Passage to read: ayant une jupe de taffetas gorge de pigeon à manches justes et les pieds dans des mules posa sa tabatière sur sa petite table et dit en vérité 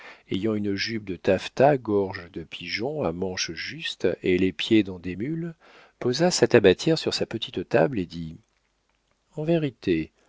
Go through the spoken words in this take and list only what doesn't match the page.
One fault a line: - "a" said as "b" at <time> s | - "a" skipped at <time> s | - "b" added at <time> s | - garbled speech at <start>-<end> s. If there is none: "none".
none